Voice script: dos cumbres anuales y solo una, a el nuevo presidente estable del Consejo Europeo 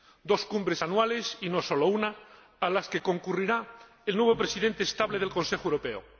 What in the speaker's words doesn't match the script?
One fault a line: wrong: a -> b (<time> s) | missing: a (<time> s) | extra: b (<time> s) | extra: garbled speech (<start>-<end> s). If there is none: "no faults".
extra: no (1.5 s)
extra: las que concurrirá (2.7 s)